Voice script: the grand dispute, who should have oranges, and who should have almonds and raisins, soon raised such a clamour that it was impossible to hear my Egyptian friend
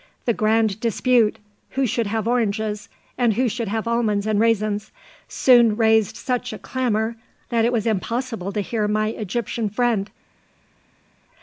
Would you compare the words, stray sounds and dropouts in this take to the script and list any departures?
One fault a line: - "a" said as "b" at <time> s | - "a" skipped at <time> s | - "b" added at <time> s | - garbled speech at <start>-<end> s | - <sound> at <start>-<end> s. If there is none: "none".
none